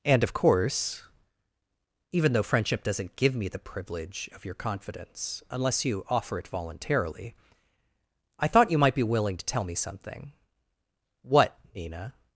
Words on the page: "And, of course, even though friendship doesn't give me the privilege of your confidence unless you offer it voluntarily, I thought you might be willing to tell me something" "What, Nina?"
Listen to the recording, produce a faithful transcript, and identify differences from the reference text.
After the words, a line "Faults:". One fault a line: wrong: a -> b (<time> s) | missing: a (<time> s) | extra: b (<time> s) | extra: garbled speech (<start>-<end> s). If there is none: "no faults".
"And, of course, even though friendship doesn't give me the privilege of your confidence unless you offer it voluntarily, I thought you might be willing to tell me something" "What, Nina?"
Faults:
no faults